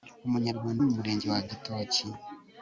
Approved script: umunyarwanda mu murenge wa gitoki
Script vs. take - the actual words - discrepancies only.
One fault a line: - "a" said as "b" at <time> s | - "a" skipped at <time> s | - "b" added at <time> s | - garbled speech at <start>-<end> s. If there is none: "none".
none